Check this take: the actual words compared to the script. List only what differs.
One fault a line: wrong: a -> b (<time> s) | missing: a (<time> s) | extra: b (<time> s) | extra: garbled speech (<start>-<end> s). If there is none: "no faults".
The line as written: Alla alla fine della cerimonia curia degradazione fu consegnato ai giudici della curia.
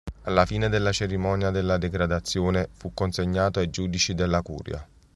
missing: alla (0.5 s)
wrong: curia -> della (1.5 s)